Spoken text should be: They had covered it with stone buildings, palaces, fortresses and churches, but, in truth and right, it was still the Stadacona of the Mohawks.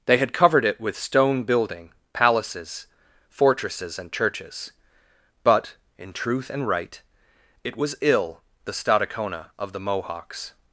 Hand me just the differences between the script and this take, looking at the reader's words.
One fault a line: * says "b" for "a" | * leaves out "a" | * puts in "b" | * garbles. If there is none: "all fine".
* says "building" for "buildings"
* says "ill" for "still"